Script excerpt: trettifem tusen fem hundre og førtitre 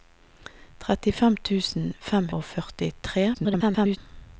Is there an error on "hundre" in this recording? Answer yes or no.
yes